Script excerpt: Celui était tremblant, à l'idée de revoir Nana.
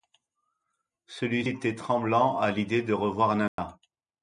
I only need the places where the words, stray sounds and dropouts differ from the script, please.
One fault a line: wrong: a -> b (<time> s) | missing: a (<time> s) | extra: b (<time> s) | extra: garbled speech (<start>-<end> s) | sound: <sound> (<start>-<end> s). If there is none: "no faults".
sound: dropout (3.5-3.6 s)